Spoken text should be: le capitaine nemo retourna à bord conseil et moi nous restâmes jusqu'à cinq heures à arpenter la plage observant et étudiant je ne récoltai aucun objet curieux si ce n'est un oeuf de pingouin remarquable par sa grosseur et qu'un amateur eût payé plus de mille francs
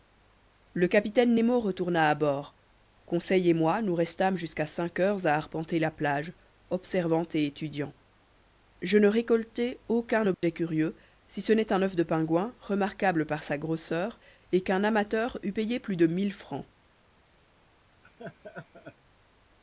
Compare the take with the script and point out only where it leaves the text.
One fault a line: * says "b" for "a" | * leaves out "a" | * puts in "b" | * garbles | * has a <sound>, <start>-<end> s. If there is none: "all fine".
* has a dropout, 10.3-10.4 s
* has a laugh, 18.0-19.0 s